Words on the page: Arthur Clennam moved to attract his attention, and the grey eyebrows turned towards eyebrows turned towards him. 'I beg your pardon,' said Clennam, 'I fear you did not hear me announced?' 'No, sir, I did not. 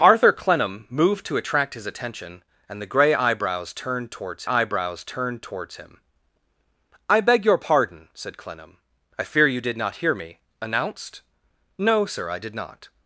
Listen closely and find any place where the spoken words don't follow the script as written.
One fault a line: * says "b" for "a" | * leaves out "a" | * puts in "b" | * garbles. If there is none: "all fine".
all fine